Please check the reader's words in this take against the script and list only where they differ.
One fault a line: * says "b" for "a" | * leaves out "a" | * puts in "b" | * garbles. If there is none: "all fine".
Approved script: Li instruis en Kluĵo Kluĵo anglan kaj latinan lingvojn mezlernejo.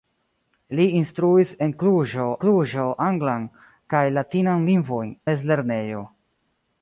all fine